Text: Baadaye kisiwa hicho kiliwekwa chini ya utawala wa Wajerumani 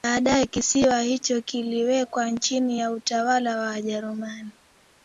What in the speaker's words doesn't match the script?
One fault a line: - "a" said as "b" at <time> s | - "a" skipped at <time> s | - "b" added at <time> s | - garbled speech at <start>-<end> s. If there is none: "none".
none